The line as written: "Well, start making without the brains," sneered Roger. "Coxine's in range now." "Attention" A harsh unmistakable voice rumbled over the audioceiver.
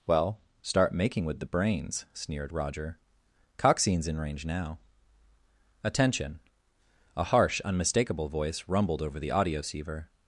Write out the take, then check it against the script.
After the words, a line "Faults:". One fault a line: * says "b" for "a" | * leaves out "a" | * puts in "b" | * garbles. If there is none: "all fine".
"Well, start making with the brains," sneered Roger. "Coxine's in range now." "Attention" A harsh unmistakable voice rumbled over the audioceiver.
Faults:
* says "with" for "without"